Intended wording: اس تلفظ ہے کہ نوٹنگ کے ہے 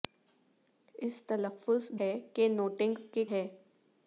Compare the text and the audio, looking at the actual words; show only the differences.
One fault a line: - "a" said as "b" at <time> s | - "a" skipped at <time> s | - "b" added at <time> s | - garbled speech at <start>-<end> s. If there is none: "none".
none